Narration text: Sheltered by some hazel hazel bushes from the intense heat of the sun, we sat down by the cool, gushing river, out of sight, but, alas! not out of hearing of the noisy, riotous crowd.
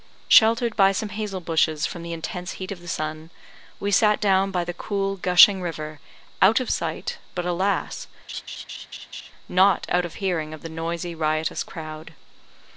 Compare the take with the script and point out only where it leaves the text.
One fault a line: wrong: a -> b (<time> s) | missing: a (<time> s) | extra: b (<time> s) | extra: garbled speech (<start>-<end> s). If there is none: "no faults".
missing: hazel (1.4 s)